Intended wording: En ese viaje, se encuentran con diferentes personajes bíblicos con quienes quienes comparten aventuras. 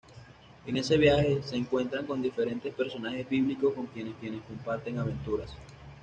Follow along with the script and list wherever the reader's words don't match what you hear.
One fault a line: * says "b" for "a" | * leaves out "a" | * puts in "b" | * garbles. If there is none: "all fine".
all fine